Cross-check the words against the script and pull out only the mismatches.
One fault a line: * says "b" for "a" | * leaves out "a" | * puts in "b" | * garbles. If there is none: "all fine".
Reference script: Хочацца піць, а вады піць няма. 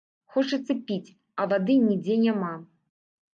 * says "нідзе" for "піць"